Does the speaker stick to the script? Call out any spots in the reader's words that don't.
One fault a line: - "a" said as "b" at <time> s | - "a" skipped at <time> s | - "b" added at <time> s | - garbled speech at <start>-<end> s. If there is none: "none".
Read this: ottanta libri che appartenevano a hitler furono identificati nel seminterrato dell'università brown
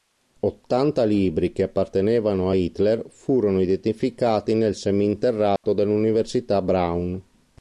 none